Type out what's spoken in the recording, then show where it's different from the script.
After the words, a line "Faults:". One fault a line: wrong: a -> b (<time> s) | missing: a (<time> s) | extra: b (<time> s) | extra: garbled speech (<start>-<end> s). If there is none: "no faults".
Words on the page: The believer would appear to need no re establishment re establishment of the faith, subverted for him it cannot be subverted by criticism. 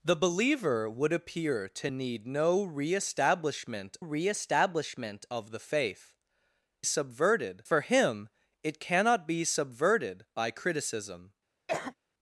The believer would appear to need no re establishment re establishment of the faith, subverted for him it cannot be subverted by criticism.
Faults:
no faults